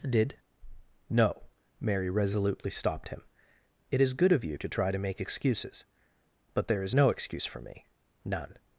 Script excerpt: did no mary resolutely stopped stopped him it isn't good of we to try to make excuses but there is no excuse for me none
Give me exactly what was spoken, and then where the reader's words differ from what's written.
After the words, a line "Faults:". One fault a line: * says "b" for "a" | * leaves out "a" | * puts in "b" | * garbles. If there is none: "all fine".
did no mary resolutely stopped him it is good of you to try to make excuses but there is no excuse for me none
Faults:
* leaves out "stopped"
* says "is" for "isn't"
* says "you" for "we"